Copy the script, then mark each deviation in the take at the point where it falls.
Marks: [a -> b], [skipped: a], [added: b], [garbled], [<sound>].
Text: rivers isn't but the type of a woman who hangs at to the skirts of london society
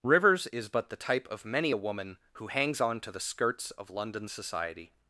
rivers [isn't -> is] but the type of [added: many] a woman who hangs [at -> on] to the skirts of london society